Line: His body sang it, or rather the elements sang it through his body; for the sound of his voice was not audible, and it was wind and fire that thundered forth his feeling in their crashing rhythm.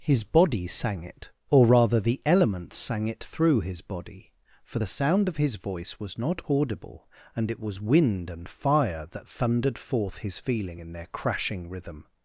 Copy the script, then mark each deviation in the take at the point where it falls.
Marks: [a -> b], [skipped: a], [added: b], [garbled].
His body sang it, or rather the elements sang it through his body; for the sound of his voice was not audible, and it was wind and fire that thundered forth his feeling in their crashing rhythm.